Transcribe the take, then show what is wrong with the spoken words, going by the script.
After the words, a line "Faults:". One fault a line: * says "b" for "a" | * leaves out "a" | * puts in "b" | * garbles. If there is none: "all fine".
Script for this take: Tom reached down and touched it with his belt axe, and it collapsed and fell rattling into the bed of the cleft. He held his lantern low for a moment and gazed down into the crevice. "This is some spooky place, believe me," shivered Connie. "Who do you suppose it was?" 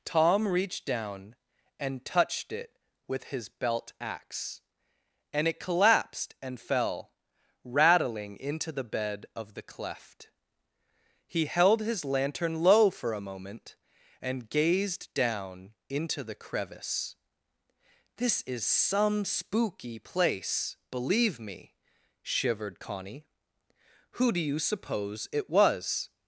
Tom reached down and touched it with his belt axe, and it collapsed and fell rattling into the bed of the cleft. He held his lantern low for a moment and gazed down into the crevice. "This is some spooky place, believe me," shivered Connie. "Who do you suppose it was?"
Faults:
all fine